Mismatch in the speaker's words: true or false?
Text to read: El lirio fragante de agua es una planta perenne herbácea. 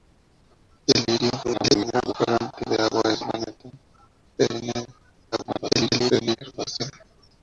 true